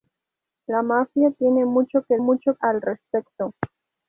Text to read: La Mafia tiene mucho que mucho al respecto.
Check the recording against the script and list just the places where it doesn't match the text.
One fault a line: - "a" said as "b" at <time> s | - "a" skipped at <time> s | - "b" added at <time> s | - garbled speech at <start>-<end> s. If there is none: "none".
none